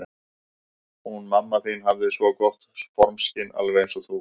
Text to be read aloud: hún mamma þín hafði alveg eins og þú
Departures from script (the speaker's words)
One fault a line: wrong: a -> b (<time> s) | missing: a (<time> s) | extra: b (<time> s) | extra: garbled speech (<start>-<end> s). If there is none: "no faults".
extra: svo gott formskyn (2.2 s)